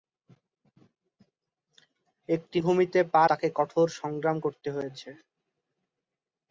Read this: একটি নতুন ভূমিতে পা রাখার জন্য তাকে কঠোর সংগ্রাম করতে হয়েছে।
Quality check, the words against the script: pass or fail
fail